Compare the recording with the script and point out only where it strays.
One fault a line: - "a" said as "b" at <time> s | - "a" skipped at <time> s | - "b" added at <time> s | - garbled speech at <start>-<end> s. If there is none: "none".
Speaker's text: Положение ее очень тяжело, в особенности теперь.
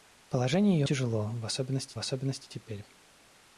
- "очень" skipped at 0.9 s
- "особенности" added at 2.0 s